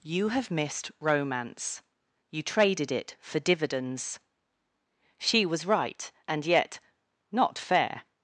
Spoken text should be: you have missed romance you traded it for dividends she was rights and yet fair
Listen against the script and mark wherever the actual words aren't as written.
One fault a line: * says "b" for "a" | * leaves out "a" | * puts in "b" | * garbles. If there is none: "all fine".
* says "right" for "rights"
* puts in "not"